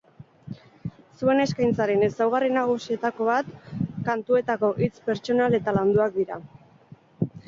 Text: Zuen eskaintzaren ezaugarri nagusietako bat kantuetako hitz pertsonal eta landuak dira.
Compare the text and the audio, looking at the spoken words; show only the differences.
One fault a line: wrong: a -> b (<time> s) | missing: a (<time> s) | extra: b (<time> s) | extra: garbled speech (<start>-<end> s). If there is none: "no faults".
no faults